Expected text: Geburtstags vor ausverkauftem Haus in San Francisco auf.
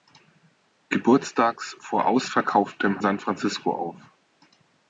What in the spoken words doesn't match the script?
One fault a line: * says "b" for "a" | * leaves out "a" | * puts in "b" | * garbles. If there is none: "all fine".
* leaves out "Haus in"